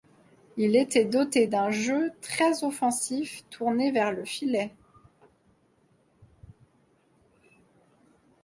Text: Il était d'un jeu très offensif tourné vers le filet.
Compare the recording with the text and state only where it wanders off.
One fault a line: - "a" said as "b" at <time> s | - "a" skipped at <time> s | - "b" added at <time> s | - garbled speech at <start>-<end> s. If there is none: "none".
- "doté" added at 1.1 s